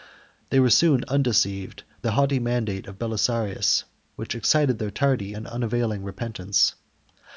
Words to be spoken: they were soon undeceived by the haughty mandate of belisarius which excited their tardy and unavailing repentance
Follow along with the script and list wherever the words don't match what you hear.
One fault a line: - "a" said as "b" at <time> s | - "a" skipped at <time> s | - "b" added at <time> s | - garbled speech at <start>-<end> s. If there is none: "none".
- "by" skipped at 1.8 s